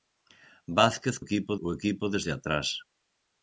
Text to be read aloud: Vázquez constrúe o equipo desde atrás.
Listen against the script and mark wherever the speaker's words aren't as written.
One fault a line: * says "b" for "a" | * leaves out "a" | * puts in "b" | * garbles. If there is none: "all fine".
* says "equipo" for "constrúe"